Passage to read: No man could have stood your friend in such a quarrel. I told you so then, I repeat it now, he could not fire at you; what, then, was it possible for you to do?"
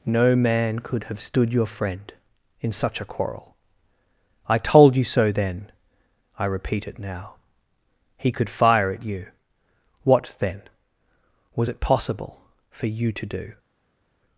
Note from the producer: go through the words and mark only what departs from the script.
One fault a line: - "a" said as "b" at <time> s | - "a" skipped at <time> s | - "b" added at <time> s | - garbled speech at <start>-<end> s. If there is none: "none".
- "not" skipped at 8.5 s